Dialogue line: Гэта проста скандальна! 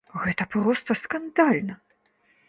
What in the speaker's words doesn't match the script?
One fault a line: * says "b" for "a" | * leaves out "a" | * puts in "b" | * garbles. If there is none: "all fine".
all fine